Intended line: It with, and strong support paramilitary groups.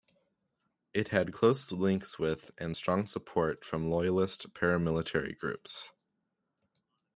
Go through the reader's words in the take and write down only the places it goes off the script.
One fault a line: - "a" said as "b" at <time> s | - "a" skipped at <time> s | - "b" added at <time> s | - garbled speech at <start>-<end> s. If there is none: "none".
- "had close links" added at 1.1 s
- "from loyalist" added at 3.6 s